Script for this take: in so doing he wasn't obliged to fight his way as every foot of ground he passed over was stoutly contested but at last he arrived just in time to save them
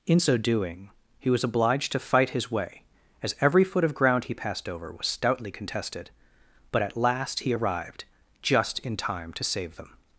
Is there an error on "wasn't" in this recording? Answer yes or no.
yes